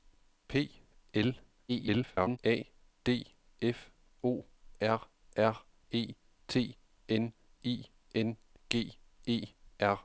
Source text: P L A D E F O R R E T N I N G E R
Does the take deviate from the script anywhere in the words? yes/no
yes